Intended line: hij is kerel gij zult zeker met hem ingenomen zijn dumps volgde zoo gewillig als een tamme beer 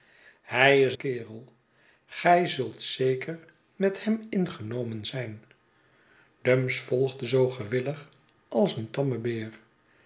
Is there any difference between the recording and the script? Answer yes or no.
no